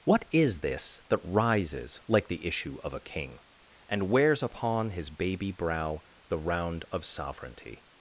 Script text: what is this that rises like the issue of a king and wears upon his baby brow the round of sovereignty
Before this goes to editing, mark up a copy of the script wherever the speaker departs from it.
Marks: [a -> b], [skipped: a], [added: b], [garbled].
what is this that rises like the issue of a king and wears upon his baby brow the round of sovereignty